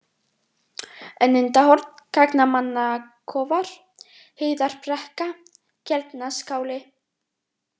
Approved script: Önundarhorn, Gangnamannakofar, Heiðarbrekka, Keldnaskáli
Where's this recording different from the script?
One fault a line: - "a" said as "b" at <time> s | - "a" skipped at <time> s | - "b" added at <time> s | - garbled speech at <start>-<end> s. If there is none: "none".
none